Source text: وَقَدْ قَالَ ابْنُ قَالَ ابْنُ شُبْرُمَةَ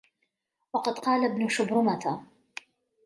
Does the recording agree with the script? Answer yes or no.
no